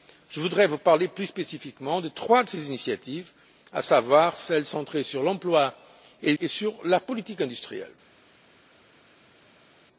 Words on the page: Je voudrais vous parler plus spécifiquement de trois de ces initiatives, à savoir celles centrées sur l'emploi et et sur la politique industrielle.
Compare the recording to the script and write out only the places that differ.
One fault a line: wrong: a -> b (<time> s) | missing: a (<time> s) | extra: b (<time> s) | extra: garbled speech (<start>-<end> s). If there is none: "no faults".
no faults